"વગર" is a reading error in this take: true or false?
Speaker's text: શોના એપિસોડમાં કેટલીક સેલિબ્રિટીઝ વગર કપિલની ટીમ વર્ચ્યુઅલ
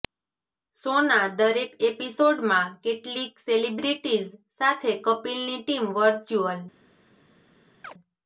true